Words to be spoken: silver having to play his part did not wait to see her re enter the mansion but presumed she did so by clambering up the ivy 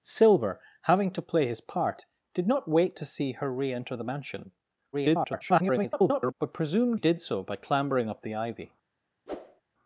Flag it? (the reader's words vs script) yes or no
yes